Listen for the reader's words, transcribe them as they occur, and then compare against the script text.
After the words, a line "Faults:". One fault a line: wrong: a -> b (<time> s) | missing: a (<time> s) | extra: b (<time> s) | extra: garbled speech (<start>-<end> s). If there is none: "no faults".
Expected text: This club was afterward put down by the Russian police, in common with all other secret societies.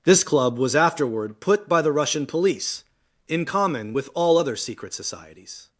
This club was afterward put by the Russian police, in common with all other secret societies.
Faults:
missing: down (1.7 s)